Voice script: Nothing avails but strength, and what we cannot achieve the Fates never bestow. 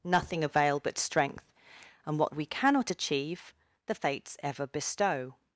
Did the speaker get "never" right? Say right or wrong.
wrong